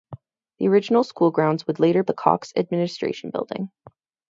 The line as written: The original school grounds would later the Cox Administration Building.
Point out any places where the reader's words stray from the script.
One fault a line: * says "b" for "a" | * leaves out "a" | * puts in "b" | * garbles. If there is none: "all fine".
all fine